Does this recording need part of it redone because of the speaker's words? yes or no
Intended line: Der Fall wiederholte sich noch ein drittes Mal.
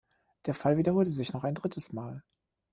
no